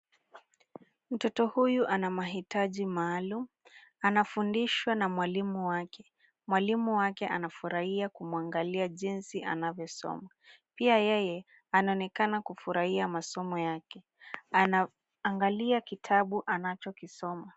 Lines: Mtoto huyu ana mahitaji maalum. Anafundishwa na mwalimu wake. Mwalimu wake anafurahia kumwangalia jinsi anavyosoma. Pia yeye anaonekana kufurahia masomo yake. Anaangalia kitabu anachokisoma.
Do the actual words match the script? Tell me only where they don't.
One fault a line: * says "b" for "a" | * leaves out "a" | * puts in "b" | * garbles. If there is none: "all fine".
all fine